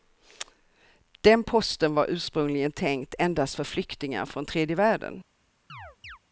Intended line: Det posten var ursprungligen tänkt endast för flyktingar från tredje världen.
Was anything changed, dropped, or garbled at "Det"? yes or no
yes